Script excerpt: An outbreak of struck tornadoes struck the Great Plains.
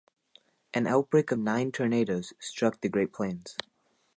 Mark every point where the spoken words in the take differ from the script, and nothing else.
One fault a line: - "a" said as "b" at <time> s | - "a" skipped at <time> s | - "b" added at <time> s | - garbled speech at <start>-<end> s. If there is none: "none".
- "struck" said as "nine" at 1.3 s